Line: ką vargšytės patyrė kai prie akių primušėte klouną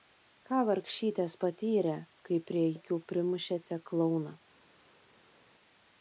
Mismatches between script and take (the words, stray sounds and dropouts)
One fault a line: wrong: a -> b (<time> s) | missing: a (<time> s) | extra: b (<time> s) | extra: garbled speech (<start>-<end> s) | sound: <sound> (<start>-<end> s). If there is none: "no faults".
no faults